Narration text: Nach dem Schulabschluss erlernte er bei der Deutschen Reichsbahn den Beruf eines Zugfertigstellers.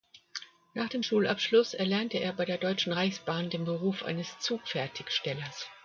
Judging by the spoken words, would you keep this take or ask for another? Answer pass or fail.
pass